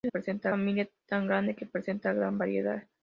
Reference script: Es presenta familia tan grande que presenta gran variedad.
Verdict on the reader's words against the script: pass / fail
pass